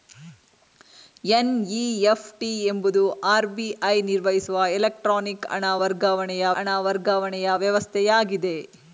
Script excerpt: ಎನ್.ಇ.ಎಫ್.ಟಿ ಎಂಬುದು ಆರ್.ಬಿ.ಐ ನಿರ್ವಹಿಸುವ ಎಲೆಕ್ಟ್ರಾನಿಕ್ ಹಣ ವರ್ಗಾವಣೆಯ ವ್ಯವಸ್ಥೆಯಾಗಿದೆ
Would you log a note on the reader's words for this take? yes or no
yes